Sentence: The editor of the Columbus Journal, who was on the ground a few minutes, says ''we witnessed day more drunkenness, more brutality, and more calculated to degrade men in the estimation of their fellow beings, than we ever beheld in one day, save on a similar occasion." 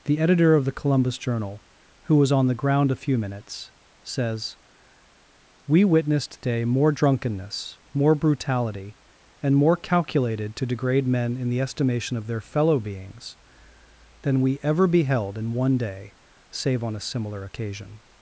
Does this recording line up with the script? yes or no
yes